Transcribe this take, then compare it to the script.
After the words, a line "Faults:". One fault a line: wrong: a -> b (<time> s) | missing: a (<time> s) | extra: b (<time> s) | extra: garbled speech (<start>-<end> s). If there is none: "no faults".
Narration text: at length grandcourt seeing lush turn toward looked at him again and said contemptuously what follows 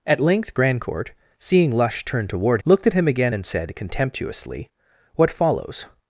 at length grandcourt seeing lush turn toward looked at him again and said contemptuously what follows
Faults:
no faults